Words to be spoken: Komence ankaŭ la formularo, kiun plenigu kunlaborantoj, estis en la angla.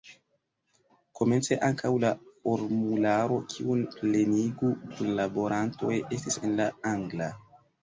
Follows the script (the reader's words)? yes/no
yes